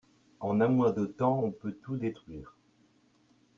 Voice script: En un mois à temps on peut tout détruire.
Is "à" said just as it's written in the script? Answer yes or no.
no